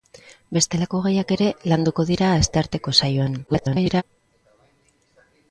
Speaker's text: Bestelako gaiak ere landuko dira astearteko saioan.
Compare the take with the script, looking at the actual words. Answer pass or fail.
fail